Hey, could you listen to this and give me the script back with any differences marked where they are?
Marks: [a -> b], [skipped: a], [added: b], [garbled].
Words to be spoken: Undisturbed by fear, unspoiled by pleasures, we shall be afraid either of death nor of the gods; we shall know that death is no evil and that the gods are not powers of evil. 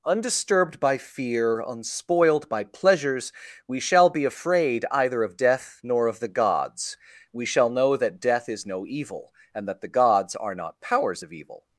Undisturbed by fear, unspoiled by pleasures, we shall be afraid either of death nor of the gods; we shall know that death is no evil and that the gods are not powers of evil.